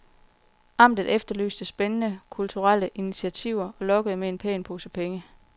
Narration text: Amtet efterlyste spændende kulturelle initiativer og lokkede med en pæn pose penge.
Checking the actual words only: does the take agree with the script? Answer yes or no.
yes